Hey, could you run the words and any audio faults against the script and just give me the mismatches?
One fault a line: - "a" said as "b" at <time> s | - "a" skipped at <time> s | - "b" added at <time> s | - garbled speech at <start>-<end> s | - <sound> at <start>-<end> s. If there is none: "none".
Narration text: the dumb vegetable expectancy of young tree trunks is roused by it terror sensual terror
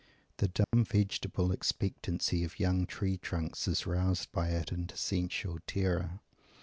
- dropout at 0.6-0.7 s
- "terror" said as "into" at 4.7 s